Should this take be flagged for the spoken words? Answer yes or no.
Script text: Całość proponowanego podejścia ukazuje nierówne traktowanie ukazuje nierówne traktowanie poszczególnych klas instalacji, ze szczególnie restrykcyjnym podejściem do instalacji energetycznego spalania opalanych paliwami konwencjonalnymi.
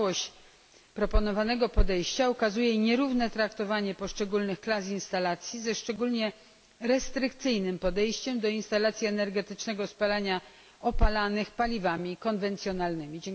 yes